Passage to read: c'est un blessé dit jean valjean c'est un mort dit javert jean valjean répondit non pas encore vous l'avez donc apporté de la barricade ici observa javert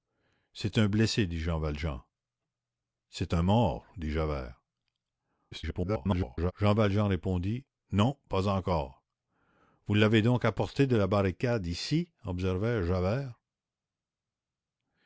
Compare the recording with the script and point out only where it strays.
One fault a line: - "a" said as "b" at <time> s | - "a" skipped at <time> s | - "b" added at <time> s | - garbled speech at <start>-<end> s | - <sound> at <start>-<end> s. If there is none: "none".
- garbled speech at 5.5-6.5 s